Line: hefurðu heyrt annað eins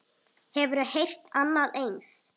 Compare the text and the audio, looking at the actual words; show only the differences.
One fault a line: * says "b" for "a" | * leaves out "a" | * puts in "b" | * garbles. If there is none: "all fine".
all fine